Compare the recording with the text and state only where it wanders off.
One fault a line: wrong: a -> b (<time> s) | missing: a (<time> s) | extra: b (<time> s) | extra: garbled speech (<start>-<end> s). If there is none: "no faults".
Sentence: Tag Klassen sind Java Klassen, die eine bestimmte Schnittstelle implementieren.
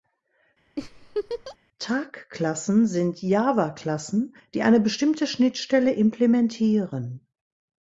no faults